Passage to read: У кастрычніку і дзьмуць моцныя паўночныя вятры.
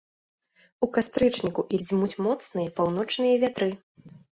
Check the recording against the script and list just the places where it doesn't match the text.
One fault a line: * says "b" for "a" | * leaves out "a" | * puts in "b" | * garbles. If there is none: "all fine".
all fine